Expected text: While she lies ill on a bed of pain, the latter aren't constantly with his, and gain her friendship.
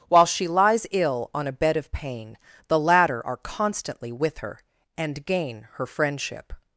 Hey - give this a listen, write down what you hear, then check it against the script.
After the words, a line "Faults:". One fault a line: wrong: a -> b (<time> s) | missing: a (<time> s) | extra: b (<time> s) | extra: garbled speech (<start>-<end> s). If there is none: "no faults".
While she lies ill on a bed of pain, the latter are constantly with her, and gain her friendship.
Faults:
wrong: aren't -> are (3.3 s)
wrong: his -> her (4.4 s)